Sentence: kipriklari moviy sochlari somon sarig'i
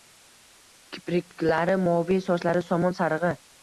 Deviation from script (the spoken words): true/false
false